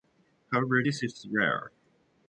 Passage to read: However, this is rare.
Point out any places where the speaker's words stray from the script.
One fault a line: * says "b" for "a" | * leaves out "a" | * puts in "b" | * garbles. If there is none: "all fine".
all fine